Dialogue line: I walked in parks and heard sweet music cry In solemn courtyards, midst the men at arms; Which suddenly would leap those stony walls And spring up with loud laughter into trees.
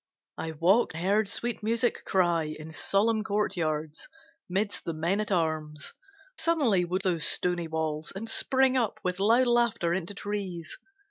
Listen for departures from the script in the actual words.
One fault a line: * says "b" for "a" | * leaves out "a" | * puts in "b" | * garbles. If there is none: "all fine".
* leaves out "in parks and"
* leaves out "Which"
* leaves out "leap"